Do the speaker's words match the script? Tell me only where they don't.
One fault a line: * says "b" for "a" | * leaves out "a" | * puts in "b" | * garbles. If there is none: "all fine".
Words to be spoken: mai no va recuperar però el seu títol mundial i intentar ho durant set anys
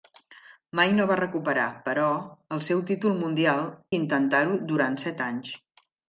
all fine